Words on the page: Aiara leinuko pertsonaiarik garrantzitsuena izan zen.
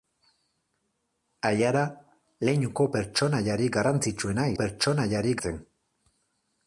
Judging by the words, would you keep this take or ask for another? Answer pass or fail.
fail